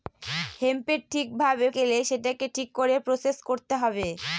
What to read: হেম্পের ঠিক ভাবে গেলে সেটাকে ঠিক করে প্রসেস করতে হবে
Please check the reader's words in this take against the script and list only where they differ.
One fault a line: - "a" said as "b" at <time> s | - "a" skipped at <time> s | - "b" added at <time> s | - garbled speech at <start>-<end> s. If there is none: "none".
none